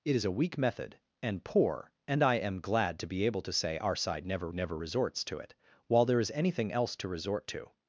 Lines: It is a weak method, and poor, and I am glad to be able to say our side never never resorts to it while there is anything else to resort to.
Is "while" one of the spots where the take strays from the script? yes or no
no